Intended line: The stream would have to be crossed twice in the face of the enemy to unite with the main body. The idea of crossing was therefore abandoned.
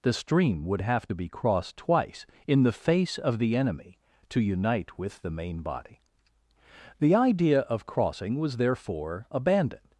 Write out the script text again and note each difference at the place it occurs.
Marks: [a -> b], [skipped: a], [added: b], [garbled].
The stream would have to be crossed twice in the face of the enemy to unite with the main body. The idea of crossing was therefore abandoned.